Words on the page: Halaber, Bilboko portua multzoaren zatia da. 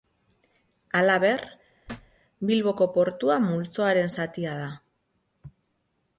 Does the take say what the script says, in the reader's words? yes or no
yes